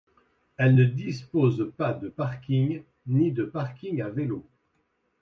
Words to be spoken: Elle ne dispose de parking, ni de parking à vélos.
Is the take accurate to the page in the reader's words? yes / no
no